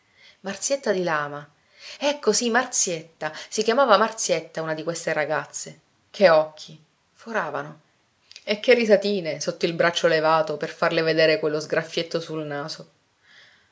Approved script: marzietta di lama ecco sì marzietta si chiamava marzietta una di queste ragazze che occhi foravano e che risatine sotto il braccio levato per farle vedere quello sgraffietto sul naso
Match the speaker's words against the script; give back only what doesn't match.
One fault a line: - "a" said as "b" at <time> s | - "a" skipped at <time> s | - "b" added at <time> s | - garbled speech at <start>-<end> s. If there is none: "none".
none